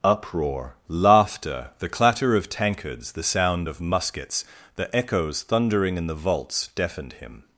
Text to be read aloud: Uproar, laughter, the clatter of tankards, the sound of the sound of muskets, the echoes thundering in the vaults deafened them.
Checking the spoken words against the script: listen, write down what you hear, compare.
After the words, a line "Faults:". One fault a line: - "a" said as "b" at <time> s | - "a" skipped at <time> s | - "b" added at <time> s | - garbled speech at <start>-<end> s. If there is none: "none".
Uproar, laughter, the clatter of tankards, the sound of muskets, the echoes thundering in the vaults deafened him.
Faults:
- "the sound of" skipped at 3.8 s
- "them" said as "him" at 7.1 s